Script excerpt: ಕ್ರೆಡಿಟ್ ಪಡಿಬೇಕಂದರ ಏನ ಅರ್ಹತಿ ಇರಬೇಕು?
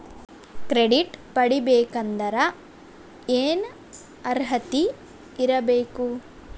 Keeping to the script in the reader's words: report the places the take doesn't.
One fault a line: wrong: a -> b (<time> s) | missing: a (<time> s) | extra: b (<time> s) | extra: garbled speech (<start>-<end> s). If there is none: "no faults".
no faults